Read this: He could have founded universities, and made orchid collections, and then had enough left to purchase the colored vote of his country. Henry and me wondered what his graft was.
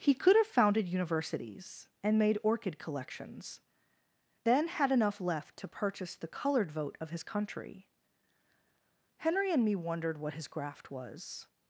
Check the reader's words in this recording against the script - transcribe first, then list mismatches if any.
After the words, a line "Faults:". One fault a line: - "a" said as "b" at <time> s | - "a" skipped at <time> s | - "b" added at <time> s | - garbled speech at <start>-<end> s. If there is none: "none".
He could have founded universities, and made orchid collections, then had enough left to purchase the colored vote of his country. Henry and me wondered what his graft was.
Faults:
- "and" skipped at 3.6 s